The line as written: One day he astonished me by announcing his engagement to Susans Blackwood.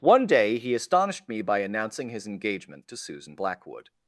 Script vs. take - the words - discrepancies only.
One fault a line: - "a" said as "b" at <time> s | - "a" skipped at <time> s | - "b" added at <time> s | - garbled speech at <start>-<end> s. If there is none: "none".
- "Susans" said as "Susan" at 3.0 s